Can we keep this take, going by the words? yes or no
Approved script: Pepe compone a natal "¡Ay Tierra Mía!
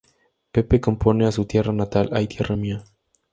no